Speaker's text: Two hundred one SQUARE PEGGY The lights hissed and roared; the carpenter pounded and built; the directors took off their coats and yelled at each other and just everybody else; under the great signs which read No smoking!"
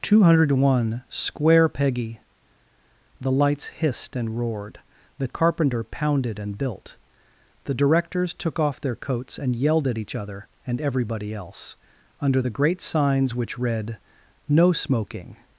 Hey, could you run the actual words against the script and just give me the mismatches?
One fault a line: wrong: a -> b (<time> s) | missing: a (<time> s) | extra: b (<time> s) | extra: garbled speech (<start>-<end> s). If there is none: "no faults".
missing: just (10.8 s)